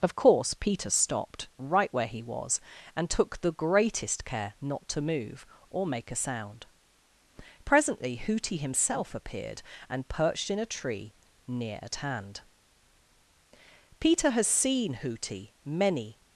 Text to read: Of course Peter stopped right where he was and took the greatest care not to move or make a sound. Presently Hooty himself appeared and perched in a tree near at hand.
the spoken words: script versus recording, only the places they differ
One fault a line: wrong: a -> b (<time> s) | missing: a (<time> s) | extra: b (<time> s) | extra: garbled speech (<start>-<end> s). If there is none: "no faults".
extra: Peter has seen Hooty many (14.0 s)